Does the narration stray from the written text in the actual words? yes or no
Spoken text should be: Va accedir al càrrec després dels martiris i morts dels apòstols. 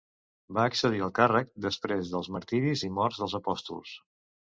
no